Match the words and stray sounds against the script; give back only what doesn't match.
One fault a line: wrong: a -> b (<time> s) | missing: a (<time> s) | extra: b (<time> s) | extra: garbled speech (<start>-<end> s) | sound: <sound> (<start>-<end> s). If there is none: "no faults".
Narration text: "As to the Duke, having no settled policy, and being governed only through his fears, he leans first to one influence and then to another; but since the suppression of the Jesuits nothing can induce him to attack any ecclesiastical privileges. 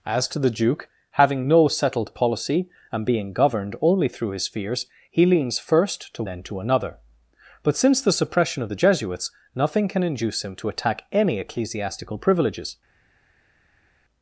missing: one influence and (6.2 s)